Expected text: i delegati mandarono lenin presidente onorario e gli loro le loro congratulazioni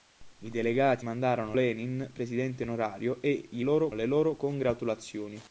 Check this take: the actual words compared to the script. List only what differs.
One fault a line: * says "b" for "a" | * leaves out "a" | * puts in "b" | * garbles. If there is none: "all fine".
all fine